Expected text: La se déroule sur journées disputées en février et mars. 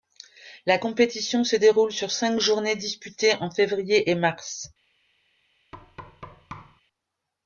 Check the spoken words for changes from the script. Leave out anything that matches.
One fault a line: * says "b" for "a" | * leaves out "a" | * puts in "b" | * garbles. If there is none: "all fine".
* puts in "compétition"
* puts in "cinq"